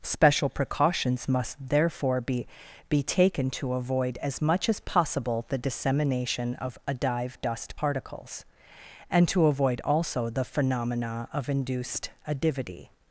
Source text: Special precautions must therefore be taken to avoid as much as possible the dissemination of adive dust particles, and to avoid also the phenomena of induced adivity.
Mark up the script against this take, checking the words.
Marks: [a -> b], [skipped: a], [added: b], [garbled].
Special precautions must therefore be [added: be] taken to avoid as much as possible the dissemination of adive dust particles, and to avoid also the phenomena of induced adivity.